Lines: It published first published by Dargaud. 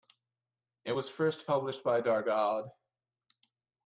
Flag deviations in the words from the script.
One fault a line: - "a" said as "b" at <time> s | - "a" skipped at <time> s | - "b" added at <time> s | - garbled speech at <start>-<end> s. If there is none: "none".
- "published" said as "was" at 0.9 s